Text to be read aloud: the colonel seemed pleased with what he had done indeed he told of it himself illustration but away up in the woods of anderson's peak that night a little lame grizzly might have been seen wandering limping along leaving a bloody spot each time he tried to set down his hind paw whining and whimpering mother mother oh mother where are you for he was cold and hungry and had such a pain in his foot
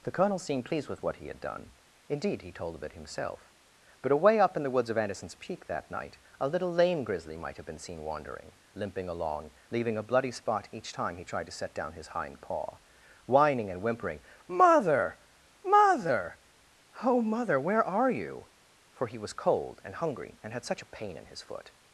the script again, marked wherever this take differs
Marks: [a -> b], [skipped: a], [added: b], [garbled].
the colonel seemed pleased with what he had done indeed he told of it himself [skipped: illustration] but away up in the woods of anderson's peak that night a little lame grizzly might have been seen wandering limping along leaving a bloody spot each time he tried to set down his hind paw whining and whimpering mother mother oh mother where are you for he was cold and hungry and had such a pain in his foot